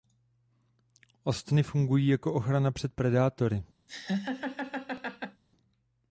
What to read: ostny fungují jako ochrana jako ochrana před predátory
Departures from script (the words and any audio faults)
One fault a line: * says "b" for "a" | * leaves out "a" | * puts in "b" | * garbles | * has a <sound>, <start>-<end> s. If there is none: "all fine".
* leaves out "jako ochrana"
* has a laugh, 3.9-5.4 s